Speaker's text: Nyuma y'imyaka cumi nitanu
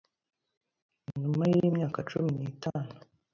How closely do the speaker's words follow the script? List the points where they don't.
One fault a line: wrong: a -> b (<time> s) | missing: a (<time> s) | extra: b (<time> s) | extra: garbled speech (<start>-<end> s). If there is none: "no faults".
no faults